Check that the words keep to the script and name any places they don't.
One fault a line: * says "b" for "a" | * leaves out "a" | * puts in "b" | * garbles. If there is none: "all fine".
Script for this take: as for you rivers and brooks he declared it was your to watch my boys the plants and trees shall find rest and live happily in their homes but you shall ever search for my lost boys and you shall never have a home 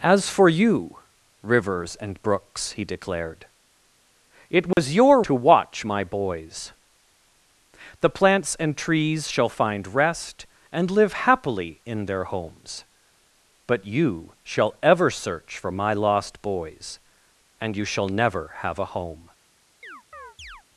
all fine